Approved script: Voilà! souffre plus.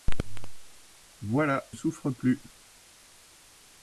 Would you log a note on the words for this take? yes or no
no